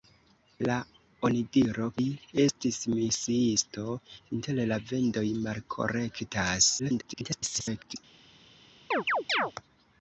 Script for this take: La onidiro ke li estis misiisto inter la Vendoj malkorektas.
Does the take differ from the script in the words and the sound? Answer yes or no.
yes